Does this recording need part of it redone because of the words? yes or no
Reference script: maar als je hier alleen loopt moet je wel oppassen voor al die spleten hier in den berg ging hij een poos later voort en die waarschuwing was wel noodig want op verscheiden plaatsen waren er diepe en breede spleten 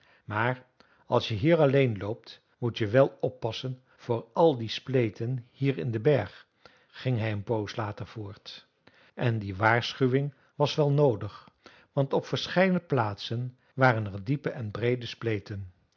no